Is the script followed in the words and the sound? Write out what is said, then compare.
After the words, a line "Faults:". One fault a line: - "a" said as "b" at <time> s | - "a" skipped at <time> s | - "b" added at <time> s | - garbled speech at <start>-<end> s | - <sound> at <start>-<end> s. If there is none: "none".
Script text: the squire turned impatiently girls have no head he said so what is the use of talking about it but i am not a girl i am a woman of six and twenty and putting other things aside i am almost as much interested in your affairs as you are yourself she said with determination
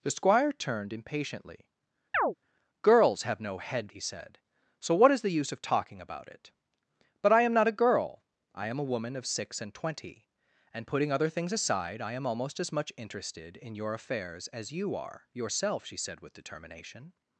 the squire turned impatiently girls have no head he said so what is the use of talking about it but i am not a girl i am a woman of six and twenty and putting other things aside i am almost as much interested in your affairs as you are yourself she said with determination
Faults:
- chirp at 2.1-2.3 s